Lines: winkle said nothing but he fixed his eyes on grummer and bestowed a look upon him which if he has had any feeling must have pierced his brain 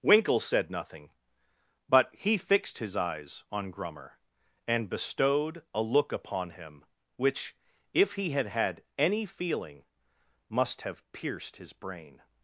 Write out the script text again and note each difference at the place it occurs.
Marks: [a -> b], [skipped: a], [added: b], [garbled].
winkle said nothing but he fixed his eyes on grummer and bestowed a look upon him which if he [has -> had] had any feeling must have pierced his brain